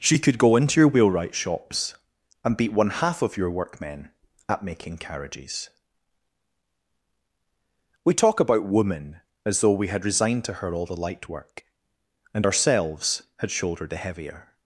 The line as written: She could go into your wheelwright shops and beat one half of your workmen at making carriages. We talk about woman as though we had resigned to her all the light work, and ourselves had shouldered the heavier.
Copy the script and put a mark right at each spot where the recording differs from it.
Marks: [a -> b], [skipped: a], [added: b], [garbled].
She could go into your wheelwright shops and beat one half of your workmen at making carriages. We talk about woman as though we had resigned to her all the light work, and ourselves had shouldered the heavier.